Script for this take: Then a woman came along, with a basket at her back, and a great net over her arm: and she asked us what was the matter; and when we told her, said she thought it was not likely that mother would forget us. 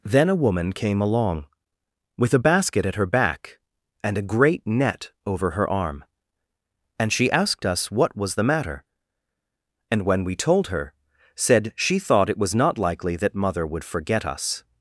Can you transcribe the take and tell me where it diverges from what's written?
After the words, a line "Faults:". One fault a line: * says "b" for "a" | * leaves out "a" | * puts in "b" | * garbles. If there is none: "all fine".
Then a woman came along, with a basket at her back, and a great net over her arm: and she asked us what was the matter; and when we told her, said she thought it was not likely that mother would forget us.
Faults:
all fine